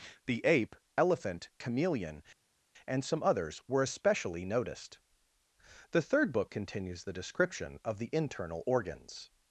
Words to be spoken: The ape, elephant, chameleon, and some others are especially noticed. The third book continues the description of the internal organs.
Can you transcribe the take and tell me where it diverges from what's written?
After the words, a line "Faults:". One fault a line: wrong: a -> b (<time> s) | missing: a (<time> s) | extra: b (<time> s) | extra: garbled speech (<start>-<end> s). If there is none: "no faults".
The ape, elephant, chameleon, and some others were especially noticed. The third book continues the description of the internal organs.
Faults:
wrong: are -> were (3.7 s)